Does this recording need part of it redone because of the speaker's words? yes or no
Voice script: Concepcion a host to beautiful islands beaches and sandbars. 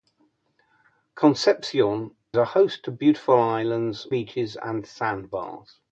no